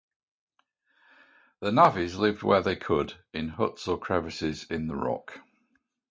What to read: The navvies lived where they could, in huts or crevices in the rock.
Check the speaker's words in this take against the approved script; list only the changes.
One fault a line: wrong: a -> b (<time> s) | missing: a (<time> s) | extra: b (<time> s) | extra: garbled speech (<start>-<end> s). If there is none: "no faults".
no faults